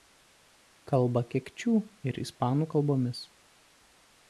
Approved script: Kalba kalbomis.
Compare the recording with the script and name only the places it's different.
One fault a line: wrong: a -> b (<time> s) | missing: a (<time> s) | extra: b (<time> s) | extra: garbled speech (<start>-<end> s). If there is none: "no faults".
extra: kekčių ir ispanų (1.4 s)